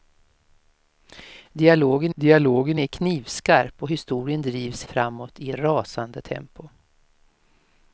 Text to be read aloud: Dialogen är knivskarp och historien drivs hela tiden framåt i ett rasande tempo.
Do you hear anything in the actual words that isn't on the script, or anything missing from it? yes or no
yes